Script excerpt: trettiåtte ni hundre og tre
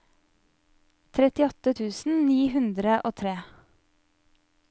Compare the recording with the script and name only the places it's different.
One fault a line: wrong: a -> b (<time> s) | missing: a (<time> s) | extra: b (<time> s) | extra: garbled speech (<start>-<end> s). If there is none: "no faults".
extra: tusen (1.8 s)